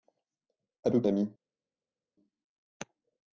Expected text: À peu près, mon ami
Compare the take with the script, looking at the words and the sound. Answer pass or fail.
fail